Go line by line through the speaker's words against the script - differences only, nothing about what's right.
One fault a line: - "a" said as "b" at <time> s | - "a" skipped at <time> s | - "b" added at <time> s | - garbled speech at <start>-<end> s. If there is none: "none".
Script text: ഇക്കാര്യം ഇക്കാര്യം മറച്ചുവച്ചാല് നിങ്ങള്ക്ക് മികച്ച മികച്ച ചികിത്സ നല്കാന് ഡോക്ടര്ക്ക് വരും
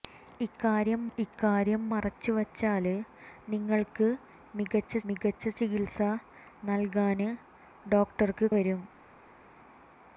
none